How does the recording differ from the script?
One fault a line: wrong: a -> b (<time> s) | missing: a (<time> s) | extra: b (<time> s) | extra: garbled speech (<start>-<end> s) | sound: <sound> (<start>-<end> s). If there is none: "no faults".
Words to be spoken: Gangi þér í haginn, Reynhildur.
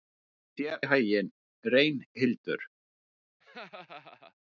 sound: laugh (3.4-4.3 s)